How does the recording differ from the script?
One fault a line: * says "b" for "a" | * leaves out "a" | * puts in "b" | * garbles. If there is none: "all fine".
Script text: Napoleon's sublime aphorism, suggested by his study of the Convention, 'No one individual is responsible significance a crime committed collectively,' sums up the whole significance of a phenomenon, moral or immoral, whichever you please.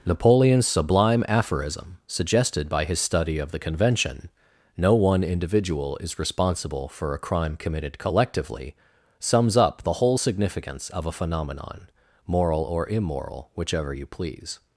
* says "for" for "significance"